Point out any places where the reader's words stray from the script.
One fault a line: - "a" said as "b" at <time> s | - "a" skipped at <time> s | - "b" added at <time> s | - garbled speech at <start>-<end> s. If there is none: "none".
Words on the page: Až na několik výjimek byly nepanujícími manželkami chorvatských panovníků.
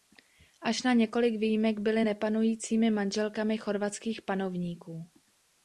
none